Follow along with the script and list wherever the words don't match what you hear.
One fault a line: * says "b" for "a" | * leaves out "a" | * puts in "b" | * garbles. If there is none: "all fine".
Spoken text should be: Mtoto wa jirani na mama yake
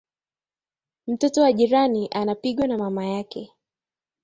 * puts in "anapigwa"